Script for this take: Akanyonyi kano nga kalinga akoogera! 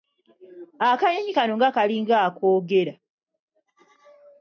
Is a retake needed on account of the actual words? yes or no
no